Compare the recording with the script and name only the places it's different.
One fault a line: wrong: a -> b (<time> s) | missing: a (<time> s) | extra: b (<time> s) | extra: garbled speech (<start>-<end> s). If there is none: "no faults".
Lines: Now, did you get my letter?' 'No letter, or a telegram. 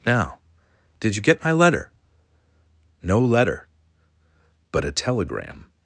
wrong: or -> but (4.7 s)